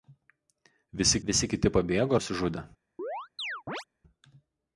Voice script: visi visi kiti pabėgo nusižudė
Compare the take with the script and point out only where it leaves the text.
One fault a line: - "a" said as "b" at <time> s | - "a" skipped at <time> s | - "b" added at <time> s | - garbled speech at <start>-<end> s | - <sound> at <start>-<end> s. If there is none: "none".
- chirp at 3.0-3.8 s